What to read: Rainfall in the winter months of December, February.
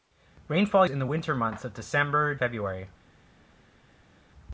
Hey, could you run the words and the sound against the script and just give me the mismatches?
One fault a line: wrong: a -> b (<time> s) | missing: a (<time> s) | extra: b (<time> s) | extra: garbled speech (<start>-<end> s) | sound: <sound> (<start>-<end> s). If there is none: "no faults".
no faults